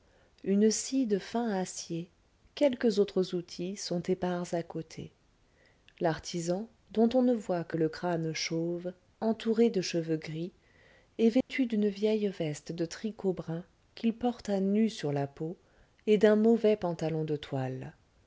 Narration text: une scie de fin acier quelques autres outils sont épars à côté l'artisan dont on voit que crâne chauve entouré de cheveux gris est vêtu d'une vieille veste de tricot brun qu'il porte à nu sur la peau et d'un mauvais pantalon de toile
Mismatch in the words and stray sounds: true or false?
true